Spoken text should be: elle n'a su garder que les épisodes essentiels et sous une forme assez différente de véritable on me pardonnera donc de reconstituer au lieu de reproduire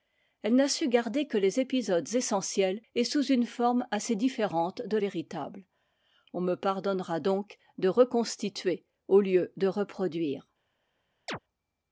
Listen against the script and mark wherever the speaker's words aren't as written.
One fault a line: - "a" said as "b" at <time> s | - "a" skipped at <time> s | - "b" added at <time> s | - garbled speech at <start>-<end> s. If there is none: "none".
none